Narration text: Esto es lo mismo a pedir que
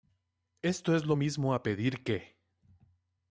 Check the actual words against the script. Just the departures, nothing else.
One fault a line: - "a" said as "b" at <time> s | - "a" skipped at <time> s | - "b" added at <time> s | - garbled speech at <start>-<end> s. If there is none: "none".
none